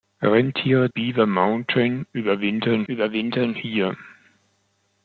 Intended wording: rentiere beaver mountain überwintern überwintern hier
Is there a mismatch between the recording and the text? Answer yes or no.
no